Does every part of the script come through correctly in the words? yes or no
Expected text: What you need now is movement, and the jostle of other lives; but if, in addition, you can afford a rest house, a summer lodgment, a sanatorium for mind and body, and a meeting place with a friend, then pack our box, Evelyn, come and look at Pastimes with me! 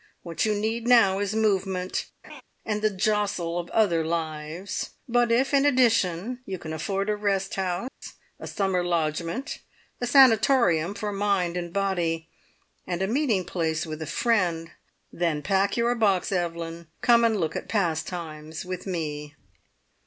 no